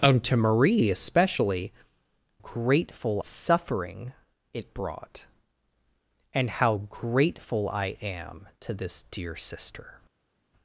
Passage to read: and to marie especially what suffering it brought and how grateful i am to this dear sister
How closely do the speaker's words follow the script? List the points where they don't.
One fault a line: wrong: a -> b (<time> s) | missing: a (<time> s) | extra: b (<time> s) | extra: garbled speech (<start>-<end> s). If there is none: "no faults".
wrong: what -> grateful (2.4 s)